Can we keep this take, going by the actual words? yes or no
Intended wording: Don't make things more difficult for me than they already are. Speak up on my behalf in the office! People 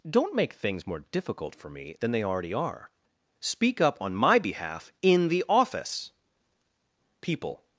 yes